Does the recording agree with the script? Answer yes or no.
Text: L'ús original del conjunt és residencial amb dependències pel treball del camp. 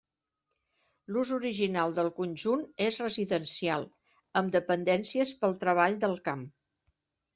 yes